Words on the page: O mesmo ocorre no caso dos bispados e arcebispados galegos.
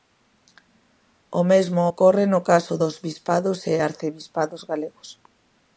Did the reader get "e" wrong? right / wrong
right